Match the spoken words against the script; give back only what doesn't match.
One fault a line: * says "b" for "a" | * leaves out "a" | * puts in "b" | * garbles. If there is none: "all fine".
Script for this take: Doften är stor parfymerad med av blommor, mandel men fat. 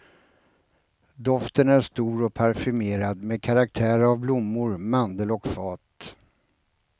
* puts in "och"
* puts in "karaktär"
* says "och" for "men"